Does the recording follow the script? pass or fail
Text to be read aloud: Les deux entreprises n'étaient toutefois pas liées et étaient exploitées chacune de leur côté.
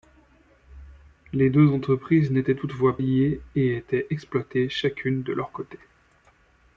fail